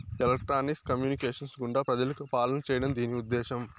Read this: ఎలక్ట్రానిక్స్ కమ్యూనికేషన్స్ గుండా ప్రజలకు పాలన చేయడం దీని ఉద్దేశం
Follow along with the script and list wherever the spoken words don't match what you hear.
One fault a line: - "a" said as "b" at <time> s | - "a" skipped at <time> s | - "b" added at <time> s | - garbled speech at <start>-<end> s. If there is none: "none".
none